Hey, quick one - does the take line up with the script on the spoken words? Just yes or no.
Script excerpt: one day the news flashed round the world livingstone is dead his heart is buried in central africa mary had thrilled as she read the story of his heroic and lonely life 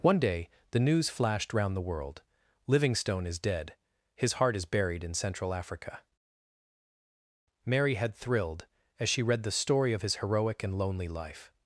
yes